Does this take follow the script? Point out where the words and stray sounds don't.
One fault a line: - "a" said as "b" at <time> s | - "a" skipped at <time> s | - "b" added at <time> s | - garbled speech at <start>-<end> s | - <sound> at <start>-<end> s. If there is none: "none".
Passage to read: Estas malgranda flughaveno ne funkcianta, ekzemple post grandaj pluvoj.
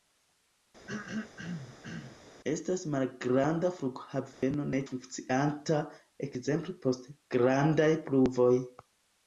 - throat clearing at 0.9-2.2 s
- dropout at 4.3-4.4 s